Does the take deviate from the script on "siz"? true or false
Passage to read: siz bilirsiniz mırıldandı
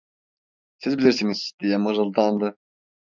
false